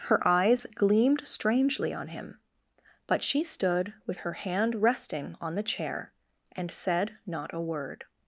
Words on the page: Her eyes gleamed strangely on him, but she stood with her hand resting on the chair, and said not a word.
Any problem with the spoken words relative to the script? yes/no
no